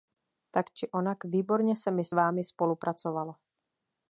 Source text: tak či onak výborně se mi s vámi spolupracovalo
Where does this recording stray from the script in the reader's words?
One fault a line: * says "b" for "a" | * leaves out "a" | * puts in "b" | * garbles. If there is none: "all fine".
all fine